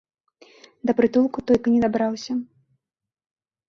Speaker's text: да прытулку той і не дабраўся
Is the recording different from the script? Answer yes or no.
no